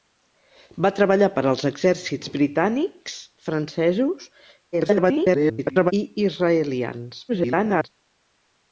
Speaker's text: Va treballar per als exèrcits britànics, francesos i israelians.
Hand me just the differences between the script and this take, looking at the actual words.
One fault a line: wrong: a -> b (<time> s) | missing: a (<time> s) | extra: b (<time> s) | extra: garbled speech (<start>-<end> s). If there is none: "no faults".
extra: garbled speech (4.7-5.9 s)
extra: garbled speech (7.3-7.9 s)